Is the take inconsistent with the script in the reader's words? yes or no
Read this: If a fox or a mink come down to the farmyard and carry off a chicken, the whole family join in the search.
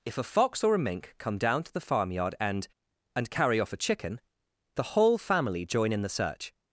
yes